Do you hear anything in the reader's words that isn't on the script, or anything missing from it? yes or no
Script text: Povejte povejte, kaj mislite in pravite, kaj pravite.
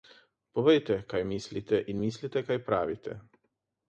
yes